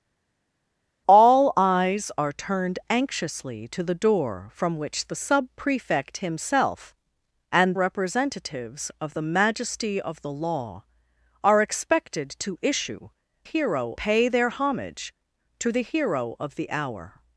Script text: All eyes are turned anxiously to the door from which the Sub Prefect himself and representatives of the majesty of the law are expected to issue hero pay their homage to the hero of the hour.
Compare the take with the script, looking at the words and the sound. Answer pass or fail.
pass